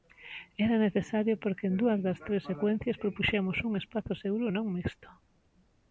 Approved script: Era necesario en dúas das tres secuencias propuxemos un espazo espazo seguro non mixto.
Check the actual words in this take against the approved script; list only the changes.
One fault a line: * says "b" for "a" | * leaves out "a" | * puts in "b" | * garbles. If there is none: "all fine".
* puts in "porque"
* leaves out "espazo"